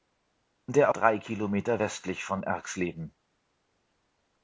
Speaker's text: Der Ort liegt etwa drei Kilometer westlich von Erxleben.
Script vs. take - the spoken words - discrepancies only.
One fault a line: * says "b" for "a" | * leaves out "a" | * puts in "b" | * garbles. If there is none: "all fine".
* leaves out "Ort liegt etwa"